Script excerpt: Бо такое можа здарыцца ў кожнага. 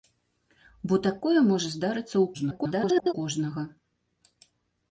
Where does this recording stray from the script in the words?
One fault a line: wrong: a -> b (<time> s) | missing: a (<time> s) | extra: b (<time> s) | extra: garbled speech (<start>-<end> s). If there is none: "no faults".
extra: garbled speech (2.3-3.1 s)